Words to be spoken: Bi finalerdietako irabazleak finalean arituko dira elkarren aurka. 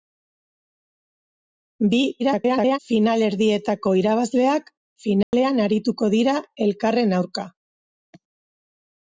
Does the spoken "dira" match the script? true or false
true